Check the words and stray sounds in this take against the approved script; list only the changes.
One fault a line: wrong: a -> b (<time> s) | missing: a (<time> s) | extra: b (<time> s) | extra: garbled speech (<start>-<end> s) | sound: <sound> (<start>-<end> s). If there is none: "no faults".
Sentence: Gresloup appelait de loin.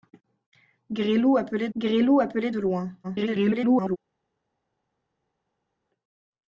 extra: gresloup appelait (1.7 s)
extra: garbled speech (3.0-4.0 s)